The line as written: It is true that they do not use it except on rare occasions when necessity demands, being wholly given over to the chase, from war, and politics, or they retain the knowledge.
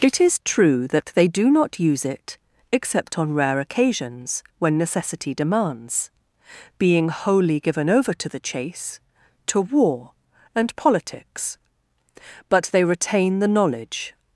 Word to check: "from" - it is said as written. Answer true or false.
false